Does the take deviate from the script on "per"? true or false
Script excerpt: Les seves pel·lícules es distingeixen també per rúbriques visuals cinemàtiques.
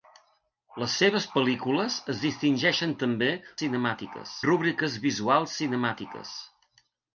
true